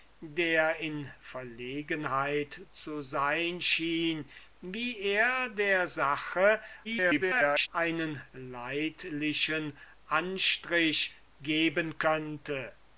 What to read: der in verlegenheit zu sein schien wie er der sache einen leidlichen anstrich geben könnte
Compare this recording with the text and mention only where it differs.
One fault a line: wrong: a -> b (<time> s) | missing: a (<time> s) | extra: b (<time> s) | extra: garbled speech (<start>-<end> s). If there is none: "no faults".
extra: garbled speech (6.8-7.7 s)